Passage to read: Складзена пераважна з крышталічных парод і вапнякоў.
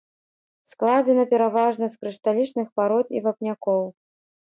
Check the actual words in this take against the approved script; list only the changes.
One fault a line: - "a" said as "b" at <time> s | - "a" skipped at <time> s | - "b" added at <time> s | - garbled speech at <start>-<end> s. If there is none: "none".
none